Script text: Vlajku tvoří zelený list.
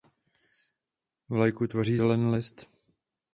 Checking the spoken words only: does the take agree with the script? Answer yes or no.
yes